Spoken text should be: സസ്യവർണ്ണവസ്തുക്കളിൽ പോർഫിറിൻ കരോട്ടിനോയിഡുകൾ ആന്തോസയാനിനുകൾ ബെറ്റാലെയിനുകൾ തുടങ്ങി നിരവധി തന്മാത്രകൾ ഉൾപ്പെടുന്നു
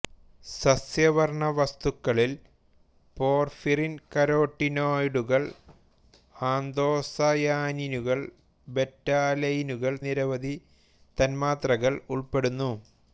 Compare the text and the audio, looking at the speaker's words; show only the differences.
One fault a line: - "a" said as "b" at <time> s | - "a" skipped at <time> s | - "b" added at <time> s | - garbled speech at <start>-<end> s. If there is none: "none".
- "തുടങ്ങി" skipped at 9.9 s